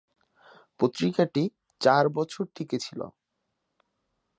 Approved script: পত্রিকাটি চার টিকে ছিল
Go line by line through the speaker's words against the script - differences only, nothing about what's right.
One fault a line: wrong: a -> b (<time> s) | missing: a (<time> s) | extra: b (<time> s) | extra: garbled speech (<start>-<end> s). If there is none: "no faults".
extra: বছর (2.1 s)